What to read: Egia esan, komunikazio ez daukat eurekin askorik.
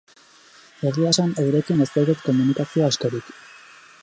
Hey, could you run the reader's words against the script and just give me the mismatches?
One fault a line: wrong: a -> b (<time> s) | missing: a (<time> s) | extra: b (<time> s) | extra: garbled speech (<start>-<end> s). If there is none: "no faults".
wrong: komunikazio -> eurekin (1.4 s)
wrong: eurekin -> komunikazio (2.3 s)